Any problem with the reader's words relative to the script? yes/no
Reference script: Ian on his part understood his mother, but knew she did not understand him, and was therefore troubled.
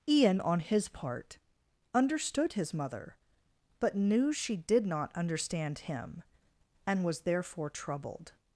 no